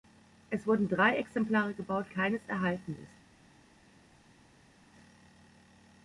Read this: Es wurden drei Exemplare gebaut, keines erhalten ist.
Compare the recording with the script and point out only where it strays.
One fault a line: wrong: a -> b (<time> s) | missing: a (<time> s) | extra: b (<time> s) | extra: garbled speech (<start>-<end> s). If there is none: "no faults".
no faults